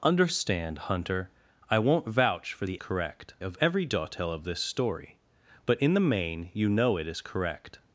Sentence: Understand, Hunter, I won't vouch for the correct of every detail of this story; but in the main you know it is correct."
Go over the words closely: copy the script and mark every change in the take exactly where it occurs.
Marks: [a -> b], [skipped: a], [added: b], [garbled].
Understand, Hunter, I won't vouch for the correct of every detail of this story; but in the main you know it is correct."